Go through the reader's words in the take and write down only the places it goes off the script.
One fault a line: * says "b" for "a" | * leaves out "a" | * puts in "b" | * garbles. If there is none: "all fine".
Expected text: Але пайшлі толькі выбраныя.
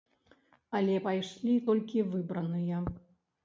all fine